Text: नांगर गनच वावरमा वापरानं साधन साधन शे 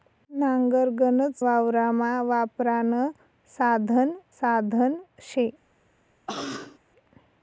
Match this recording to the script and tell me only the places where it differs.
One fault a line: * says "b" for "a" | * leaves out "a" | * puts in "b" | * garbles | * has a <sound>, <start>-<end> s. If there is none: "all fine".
* has a cough, 6.3-6.8 s